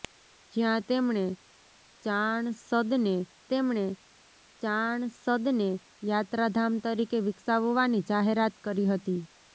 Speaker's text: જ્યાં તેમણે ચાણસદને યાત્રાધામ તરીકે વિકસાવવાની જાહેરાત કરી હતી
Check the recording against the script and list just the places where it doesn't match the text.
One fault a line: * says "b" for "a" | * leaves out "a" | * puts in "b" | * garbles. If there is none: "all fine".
* puts in "તેમણે ચાણસદને"